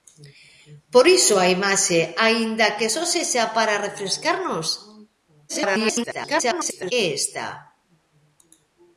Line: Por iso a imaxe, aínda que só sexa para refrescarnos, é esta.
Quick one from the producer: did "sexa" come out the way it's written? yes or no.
yes